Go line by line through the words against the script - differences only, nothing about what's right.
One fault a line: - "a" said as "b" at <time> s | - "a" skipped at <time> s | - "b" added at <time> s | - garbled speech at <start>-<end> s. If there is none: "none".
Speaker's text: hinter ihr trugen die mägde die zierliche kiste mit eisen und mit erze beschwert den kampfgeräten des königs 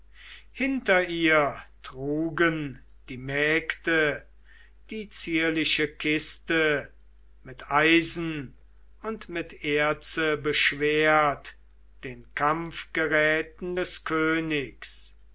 none